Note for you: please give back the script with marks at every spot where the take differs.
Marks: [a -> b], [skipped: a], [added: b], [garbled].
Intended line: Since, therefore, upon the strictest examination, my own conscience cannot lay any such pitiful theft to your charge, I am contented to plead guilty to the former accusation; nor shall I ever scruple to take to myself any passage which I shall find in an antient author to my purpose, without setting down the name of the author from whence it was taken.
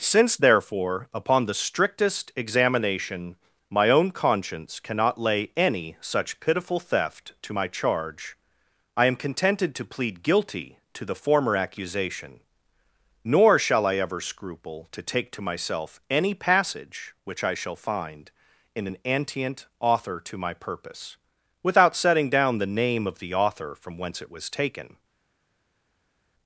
Since, therefore, upon the strictest examination, my own conscience cannot lay any such pitiful theft to [your -> my] charge, I am contented to plead guilty to the former accusation; nor shall I ever scruple to take to myself any passage which I shall find in an antient author to my purpose, without setting down the name of the author from whence it was taken.